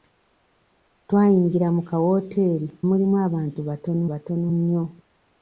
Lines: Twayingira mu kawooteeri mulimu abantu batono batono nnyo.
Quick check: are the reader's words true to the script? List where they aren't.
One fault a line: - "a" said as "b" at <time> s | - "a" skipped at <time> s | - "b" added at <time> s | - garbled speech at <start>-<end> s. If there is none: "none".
none